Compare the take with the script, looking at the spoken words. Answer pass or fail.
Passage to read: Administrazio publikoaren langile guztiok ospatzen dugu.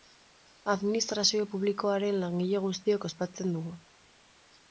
pass